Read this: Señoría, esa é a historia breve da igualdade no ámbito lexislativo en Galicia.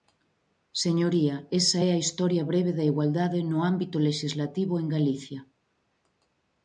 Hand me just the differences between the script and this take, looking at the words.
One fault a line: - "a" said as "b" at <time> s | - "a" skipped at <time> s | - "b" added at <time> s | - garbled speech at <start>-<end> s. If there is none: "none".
none